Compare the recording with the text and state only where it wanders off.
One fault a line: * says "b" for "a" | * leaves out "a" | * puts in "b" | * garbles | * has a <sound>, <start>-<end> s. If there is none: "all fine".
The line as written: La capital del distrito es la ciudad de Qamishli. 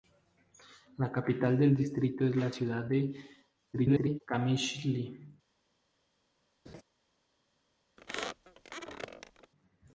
* garbles
* has a laugh, 6.7-6.8 s
* has a squeak, 8.0-9.5 s